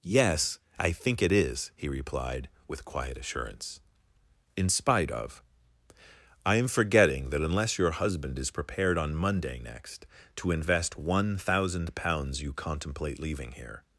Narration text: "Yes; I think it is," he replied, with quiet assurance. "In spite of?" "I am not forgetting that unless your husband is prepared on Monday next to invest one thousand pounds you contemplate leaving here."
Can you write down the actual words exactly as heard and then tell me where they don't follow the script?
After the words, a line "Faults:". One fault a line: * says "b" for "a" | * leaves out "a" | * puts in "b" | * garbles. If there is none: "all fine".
"Yes; I think it is," he replied, with quiet assurance. "In spite of?" "I am forgetting that unless your husband is prepared on Monday next to invest one thousand pounds you contemplate leaving here."
Faults:
* leaves out "not"